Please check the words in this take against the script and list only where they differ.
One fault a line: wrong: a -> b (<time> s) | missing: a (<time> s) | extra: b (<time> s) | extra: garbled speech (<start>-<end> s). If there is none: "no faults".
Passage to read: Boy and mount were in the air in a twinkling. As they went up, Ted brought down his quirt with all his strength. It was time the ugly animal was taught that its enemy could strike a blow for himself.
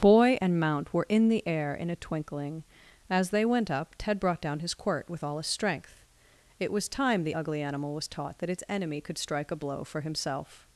no faults